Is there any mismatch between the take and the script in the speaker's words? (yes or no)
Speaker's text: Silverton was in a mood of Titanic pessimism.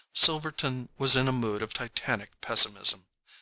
no